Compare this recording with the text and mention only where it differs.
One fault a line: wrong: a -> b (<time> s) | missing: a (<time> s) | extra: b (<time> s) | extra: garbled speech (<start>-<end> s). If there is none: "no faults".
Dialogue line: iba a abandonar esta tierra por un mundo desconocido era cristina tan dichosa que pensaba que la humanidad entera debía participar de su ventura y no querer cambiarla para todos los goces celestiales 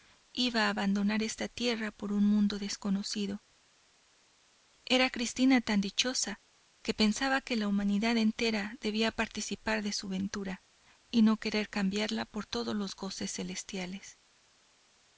wrong: para -> por (12.2 s)